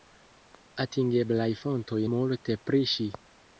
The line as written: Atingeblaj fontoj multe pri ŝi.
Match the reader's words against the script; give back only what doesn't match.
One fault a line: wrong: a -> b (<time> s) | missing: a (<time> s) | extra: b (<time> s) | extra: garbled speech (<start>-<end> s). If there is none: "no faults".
no faults